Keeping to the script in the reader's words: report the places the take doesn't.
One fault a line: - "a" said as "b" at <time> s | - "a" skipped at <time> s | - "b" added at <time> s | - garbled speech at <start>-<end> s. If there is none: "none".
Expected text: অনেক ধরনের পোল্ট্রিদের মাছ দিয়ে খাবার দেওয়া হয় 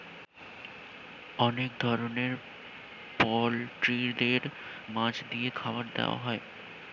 none